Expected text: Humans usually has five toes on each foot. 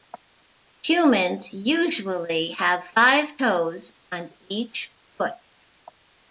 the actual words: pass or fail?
fail